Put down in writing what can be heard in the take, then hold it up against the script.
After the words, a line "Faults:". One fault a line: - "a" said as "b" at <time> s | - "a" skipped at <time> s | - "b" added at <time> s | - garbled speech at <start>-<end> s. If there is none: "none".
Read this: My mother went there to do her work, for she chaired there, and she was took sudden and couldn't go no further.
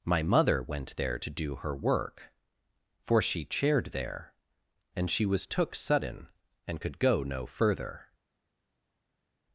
My mother went there to do her work, for she chaired there, and she was took sudden and could go no further.
Faults:
- "couldn't" said as "could" at 6.8 s